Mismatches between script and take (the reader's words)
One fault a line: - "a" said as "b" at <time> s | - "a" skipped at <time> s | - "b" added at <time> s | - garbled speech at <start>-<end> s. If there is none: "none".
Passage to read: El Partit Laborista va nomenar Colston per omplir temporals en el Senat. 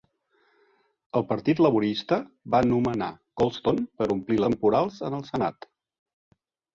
none